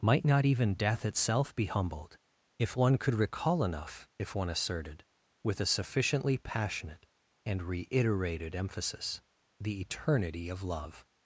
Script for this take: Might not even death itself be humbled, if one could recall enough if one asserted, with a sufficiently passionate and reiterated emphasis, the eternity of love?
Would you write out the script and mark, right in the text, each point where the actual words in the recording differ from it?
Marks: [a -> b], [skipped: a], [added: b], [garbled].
Might not even death itself be humbled, if one could recall enough if one asserted, with a sufficiently passionate and reiterated emphasis, the eternity of love?